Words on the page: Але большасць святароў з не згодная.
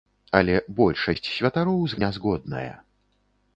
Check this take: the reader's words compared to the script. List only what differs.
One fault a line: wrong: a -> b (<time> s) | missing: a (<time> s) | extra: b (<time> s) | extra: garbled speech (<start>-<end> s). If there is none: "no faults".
no faults